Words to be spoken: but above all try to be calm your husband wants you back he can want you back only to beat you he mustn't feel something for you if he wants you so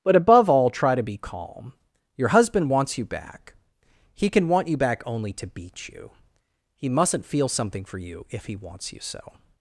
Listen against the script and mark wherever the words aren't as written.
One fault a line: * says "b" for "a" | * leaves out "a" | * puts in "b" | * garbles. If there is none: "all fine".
all fine